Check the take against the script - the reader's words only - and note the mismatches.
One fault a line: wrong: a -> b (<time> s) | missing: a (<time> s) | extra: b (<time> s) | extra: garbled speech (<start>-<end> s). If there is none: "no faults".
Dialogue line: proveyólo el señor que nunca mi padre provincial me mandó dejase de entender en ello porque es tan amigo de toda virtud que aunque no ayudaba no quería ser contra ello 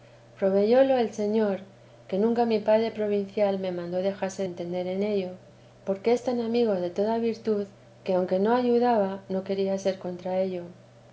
missing: de (4.4 s)